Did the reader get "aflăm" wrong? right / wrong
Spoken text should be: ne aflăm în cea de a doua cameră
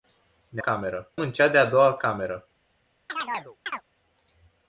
wrong